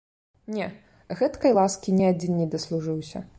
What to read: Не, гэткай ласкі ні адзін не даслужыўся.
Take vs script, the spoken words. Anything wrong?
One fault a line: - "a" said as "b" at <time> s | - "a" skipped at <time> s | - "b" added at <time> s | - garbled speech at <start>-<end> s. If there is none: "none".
none